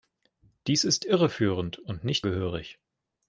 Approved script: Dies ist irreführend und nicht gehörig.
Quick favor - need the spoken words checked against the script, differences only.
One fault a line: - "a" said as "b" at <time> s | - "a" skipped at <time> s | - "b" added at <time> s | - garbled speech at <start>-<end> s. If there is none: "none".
none